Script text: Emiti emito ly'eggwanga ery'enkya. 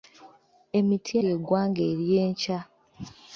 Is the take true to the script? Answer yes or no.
no